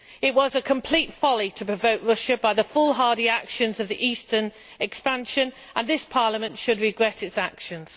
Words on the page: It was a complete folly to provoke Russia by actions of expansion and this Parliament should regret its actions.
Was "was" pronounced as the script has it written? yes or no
yes